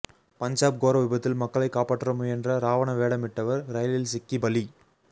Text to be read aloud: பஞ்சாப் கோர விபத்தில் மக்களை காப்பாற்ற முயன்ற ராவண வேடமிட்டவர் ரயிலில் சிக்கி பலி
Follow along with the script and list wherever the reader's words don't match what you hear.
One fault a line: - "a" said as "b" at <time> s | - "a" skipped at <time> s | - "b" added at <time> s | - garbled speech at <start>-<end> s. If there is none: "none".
none